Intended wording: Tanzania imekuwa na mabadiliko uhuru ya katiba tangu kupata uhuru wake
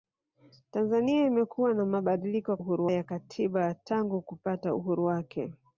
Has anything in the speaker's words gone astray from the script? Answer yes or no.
no